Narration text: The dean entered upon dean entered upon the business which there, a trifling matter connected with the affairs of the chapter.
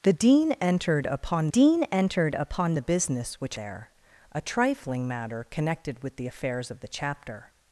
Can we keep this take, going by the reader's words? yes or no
yes